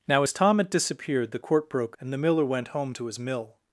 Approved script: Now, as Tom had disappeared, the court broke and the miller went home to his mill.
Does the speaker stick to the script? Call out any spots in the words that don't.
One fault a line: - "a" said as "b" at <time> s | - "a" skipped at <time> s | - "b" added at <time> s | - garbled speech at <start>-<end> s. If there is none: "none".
none